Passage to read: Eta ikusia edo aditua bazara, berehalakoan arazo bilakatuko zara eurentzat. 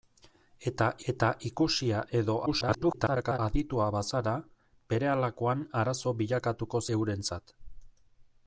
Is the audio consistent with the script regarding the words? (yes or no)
no